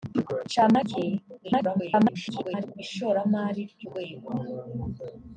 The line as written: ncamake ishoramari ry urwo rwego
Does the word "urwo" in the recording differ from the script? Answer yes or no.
yes